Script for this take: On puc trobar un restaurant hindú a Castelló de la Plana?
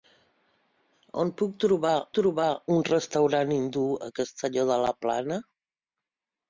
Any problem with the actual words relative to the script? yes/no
yes